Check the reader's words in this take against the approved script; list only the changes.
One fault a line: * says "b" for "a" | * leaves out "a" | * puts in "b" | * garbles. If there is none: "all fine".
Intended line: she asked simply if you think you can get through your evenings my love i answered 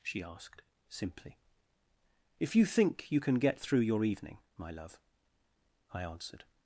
* says "evening" for "evenings"